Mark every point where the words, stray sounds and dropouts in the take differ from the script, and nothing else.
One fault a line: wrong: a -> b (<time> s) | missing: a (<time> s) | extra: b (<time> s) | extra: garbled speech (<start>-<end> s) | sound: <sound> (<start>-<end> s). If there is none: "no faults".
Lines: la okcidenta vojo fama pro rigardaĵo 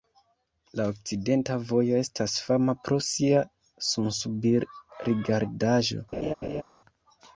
extra: estas (2.0 s)
extra: sia sunsubir (3.1 s)
sound: laugh (6.1-6.6 s)